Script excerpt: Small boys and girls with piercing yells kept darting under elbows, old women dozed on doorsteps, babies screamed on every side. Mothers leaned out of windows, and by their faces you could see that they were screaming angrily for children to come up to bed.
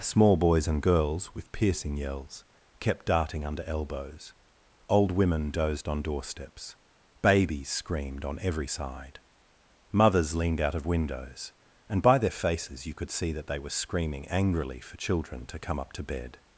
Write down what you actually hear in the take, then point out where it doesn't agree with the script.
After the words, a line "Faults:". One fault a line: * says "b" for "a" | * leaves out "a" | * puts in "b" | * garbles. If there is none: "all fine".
Small boys and girls with piercing yells kept darting under elbows, old women dozed on doorsteps, babies screamed on every side. Mothers leaned out of windows, and by their faces you could see that they were screaming angrily for children to come up to bed.
Faults:
all fine